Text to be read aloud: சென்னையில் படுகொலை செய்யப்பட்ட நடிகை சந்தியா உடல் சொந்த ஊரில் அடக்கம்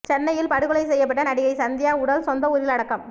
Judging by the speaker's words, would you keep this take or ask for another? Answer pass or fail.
pass